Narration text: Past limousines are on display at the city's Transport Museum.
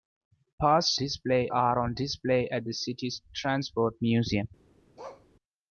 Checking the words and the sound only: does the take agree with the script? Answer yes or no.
no